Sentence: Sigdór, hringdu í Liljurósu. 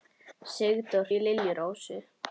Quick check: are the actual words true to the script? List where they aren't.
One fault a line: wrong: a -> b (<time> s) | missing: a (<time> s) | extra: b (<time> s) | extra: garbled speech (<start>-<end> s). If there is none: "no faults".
missing: hringdu (1.1 s)